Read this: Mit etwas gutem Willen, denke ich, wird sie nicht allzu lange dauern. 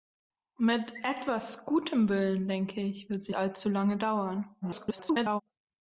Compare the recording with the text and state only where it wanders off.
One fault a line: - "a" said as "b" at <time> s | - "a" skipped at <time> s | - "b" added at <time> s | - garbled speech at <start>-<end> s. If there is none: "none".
- "nicht" skipped at 3.4 s
- garbled speech at 4.6-5.4 s